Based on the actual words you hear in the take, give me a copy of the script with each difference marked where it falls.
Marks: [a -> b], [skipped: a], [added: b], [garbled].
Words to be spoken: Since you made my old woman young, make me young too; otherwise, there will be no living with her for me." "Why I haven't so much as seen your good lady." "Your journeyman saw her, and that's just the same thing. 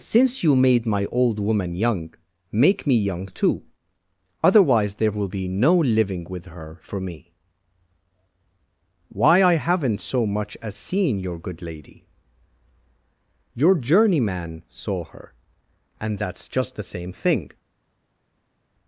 Since you made my old woman young, make me young too; otherwise, there will be no living with her for me." "Why I haven't so much as seen your good lady." "Your journeyman saw her, and that's just the same thing.